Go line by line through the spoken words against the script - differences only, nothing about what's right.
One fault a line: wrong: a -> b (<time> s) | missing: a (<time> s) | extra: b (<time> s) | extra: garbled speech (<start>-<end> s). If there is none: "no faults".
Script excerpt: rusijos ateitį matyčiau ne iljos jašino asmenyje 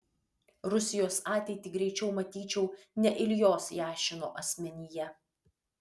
extra: greičiau (1.8 s)